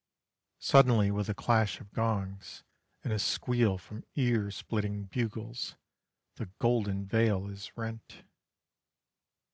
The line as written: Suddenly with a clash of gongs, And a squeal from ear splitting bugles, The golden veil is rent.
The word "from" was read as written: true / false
true